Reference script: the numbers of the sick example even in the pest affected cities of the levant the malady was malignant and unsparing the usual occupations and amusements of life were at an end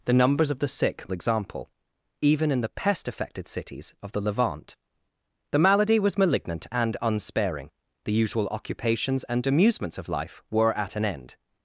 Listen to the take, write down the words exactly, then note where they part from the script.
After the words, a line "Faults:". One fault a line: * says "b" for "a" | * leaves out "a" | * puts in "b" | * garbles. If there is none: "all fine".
the numbers of the sick example even in the pest affected cities of the levant the malady was malignant and unsparing the usual occupations and amusements of life were at an end
Faults:
all fine